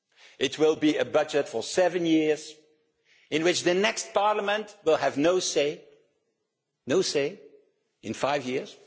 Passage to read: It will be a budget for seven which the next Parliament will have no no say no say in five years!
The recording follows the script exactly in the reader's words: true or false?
false